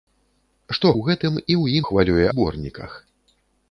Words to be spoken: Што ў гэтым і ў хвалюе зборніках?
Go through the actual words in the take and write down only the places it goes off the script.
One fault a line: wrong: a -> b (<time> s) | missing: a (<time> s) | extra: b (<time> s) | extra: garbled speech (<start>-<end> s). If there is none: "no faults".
no faults